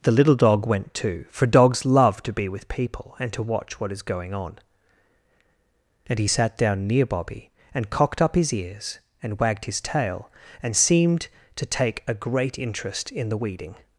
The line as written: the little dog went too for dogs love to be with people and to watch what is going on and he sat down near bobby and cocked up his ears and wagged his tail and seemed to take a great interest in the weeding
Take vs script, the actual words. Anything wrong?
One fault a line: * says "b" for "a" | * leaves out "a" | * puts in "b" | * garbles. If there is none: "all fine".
all fine